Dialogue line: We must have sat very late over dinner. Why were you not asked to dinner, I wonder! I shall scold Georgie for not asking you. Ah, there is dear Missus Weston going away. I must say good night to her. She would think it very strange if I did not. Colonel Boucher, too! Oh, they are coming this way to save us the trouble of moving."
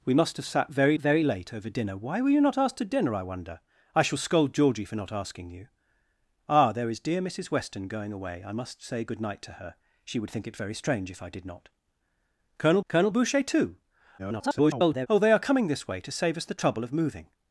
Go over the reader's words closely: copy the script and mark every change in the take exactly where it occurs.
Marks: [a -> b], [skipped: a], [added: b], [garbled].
We must have sat very [added: very] late over dinner. Why were you not asked to dinner, I wonder! I shall scold Georgie for not asking you. Ah, there is dear Missus Weston going away. I must say good night to her. She would think it very strange if I did not. Colonel [added: colonel] Boucher, too! [garbled] Oh, they are coming this way to save us the trouble of moving."